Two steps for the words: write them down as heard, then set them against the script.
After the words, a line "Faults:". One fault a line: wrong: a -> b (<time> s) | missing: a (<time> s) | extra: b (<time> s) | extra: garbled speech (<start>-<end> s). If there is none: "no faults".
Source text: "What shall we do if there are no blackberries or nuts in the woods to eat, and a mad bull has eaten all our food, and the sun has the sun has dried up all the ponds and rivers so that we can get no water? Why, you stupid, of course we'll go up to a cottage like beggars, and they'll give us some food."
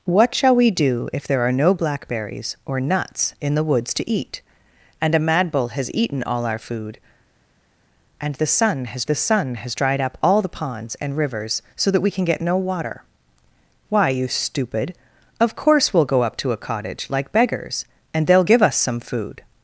"What shall we do if there are no blackberries or nuts in the woods to eat, and a mad bull has eaten all our food, and the sun has the sun has dried up all the ponds and rivers so that we can get no water? Why, you stupid, of course we'll go up to a cottage like beggars, and they'll give us some food."
Faults:
no faults